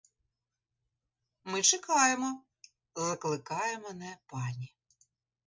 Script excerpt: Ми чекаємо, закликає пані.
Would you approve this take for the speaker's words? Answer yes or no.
no